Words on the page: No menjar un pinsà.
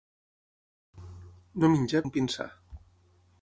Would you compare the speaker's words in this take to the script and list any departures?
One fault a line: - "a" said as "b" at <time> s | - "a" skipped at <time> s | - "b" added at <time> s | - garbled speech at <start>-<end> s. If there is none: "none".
none